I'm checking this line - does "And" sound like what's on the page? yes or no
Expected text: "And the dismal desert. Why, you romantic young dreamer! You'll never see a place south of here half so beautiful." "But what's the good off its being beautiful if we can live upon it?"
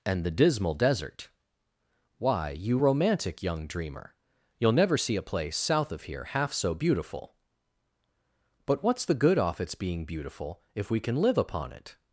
yes